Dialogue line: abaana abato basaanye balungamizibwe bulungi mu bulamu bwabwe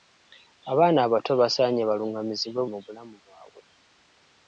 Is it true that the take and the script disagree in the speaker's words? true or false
true